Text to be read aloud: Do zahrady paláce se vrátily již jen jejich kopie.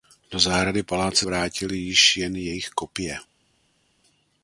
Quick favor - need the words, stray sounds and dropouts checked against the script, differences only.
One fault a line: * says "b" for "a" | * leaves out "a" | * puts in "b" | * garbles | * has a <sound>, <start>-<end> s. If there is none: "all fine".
* leaves out "se"